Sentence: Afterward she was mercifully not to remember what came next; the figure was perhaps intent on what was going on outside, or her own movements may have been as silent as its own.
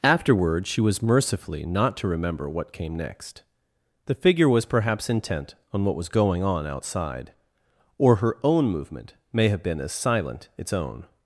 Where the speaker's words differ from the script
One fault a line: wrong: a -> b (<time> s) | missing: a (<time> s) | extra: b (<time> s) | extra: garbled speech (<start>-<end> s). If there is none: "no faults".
wrong: movements -> movement (8.7 s)
missing: as (10.5 s)